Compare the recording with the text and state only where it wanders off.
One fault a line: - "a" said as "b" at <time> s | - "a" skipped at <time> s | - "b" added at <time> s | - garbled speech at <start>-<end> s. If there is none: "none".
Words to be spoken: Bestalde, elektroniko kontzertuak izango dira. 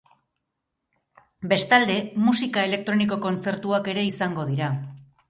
- "musika" added at 2.3 s
- "ere" added at 3.9 s